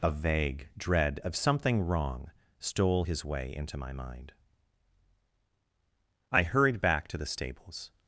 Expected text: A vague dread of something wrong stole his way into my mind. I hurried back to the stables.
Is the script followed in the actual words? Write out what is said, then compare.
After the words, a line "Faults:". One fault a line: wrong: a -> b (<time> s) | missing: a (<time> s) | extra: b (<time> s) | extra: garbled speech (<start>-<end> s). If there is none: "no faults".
A vague dread of something wrong stole his way into my mind. I hurried back to the stables.
Faults:
no faults